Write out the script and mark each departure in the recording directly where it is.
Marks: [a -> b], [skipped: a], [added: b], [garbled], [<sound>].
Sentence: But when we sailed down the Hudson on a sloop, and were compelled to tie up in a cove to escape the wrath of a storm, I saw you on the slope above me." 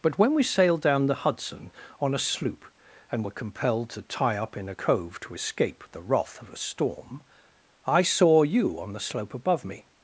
But when we sailed down the Hudson on a sloop, and were compelled to tie up in a cove to escape the wrath of a storm, I saw you on the slope above me."